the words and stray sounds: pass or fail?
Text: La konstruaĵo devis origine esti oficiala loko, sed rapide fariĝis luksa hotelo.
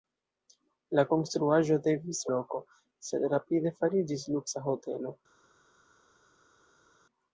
fail